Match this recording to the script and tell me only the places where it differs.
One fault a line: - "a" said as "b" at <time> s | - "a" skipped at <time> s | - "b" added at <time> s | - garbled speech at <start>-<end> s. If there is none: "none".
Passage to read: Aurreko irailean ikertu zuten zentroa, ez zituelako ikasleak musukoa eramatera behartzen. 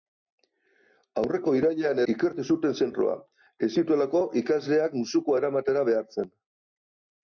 none